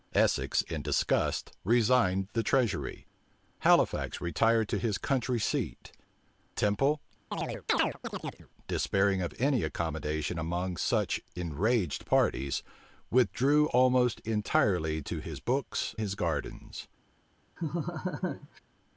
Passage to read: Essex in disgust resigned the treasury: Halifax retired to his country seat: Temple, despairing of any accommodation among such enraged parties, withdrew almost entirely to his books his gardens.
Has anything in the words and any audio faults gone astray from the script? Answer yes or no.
yes